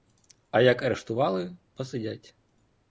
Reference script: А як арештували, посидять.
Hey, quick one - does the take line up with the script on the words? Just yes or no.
yes